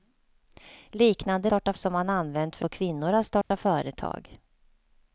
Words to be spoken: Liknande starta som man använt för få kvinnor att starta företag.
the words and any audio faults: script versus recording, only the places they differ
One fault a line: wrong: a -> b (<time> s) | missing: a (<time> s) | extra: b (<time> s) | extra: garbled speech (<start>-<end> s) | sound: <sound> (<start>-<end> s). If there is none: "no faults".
sound: dropout (3.4-3.5 s)